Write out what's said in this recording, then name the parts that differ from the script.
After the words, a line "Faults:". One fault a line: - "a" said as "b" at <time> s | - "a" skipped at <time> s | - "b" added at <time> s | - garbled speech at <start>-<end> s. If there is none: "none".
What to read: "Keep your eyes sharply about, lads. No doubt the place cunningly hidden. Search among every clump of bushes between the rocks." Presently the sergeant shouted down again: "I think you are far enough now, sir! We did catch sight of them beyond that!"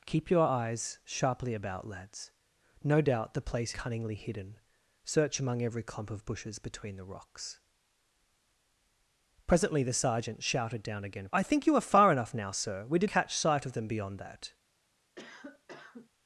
"Keep your eyes sharply about, lads. No doubt the place cunningly hidden. Search among every clump of bushes between the rocks." Presently the sergeant shouted down again: "I think you are far enough now, sir! We did catch sight of them beyond that!"
Faults:
none